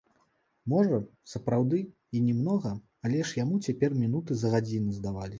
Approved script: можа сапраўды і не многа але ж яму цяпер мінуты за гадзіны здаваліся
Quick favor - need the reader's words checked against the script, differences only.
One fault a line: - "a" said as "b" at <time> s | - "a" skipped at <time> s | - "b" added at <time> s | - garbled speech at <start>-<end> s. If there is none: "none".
none